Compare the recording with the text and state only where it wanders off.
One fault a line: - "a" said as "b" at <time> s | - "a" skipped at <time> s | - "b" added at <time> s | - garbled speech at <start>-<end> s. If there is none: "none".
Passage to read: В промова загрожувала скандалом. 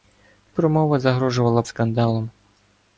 none